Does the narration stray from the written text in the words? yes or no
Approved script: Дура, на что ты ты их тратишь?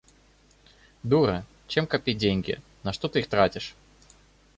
yes